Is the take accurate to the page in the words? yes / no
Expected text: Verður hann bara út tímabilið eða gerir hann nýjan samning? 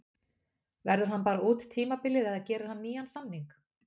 yes